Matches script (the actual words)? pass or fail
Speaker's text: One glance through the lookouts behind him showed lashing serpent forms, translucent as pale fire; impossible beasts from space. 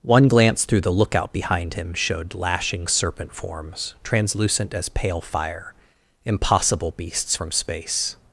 fail